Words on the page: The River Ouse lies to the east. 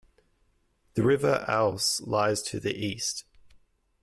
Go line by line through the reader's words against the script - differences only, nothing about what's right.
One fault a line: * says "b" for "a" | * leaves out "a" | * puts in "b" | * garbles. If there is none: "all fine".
all fine